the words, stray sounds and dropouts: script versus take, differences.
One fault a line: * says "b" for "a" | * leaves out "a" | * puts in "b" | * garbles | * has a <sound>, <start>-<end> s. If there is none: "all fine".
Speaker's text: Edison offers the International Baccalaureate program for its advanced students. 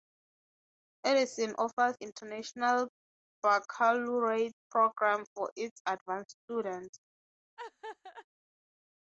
* leaves out "the"
* has a laugh, 7.6-8.3 s